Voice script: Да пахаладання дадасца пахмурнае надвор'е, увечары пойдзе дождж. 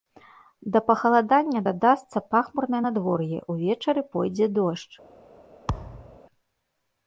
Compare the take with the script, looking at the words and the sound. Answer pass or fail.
fail